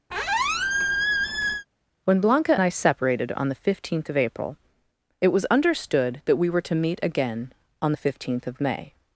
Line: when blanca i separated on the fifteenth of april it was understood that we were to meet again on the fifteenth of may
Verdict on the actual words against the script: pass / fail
pass